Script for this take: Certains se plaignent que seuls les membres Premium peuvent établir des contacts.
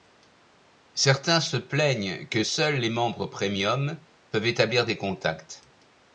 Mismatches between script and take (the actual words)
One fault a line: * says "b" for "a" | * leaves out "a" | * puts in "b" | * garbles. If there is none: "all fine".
all fine